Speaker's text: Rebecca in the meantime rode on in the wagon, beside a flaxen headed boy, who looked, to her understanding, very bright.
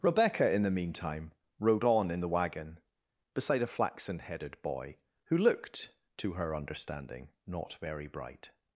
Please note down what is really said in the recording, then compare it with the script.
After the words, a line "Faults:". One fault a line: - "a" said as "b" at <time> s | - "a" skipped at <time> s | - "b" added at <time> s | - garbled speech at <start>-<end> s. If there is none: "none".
Rebecca in the meantime rode on in the wagon, beside a flaxen headed boy, who looked, to her understanding, not very bright.
Faults:
- "not" added at 7.5 s